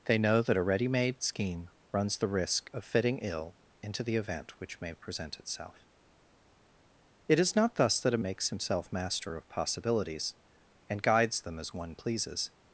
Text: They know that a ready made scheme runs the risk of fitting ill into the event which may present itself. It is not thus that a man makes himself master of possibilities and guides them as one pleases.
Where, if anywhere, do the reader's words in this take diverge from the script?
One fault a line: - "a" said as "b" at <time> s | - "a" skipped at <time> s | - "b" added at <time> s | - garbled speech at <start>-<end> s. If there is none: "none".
- "man" skipped at 8.2 s